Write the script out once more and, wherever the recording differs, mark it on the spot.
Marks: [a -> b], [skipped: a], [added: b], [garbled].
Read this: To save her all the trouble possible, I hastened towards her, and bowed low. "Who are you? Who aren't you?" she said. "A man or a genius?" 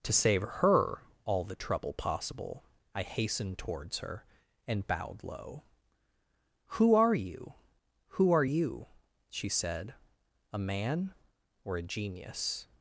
To save her all the trouble possible, I hastened towards her, and bowed low. "Who are you? Who [aren't -> are] you?" she said. "A man or a genius?"